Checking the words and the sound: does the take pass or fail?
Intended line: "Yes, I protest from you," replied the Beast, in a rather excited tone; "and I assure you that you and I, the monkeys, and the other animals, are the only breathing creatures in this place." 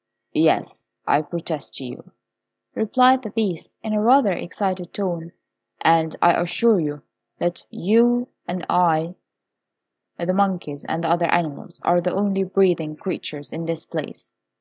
fail